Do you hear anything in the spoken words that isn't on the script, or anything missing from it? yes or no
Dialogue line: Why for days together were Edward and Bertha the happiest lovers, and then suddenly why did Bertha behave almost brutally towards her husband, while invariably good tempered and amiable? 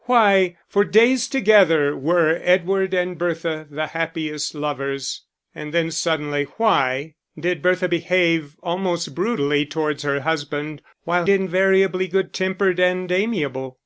no